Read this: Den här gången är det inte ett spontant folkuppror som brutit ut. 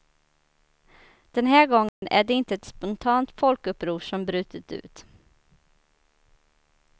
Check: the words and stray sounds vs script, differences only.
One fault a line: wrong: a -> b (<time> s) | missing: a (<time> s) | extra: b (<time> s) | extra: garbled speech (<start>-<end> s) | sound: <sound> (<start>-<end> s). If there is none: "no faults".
sound: dropout (1.9-2.0 s)